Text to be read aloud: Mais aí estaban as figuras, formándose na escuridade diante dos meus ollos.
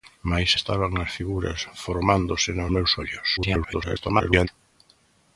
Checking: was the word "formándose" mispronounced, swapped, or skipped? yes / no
no